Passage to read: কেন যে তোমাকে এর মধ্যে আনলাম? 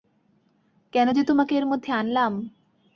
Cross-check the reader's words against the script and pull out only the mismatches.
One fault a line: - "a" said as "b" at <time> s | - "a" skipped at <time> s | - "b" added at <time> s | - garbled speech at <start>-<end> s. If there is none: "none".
none